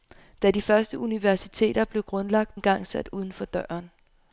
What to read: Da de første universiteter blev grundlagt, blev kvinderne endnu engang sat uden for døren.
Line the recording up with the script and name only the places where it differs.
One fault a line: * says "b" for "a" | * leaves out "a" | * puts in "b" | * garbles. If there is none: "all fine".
* leaves out "blev kvinderne endnu"